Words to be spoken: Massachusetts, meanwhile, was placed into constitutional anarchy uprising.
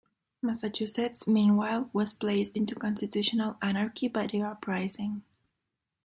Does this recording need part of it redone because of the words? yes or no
yes